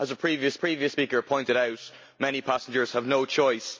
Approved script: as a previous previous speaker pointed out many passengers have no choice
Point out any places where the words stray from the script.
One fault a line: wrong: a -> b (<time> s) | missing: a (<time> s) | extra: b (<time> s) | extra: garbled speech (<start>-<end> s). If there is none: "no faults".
no faults